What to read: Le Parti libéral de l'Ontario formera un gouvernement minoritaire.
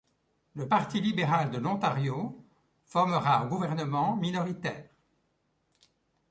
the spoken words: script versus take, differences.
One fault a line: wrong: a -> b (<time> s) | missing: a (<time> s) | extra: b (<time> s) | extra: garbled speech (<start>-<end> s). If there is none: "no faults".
no faults